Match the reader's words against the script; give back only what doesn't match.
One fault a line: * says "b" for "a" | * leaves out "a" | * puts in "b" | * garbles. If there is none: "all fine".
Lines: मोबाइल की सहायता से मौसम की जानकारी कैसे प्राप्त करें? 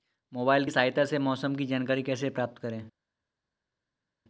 all fine